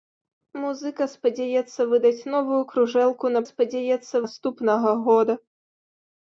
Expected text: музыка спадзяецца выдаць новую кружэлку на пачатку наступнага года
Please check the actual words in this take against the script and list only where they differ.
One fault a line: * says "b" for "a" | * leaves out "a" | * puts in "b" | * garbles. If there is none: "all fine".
* says "спадзяецца" for "пачатку"